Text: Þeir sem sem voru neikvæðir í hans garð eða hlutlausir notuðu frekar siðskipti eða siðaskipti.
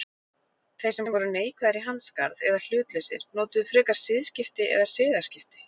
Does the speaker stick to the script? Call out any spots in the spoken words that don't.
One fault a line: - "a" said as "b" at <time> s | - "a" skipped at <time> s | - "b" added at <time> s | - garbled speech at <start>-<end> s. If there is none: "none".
none